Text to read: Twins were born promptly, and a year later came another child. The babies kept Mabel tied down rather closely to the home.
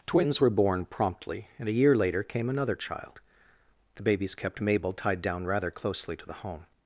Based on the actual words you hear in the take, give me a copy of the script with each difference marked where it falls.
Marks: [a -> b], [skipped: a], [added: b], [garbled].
Twins were born promptly, and a year later came another child. The babies kept Mabel tied down rather closely to the home.